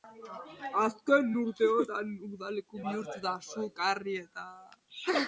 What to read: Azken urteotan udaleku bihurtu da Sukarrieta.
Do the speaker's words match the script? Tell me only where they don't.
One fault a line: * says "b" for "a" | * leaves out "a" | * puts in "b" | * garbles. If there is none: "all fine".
all fine